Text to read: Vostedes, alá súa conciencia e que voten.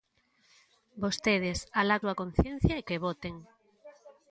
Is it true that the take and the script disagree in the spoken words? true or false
false